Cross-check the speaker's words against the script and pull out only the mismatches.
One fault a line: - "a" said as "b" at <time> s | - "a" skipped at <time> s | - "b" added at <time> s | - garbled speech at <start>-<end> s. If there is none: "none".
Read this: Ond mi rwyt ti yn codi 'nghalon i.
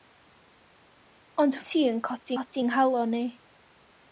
- "mi rwyt" skipped at 1.6 s
- "codi" added at 2.4 s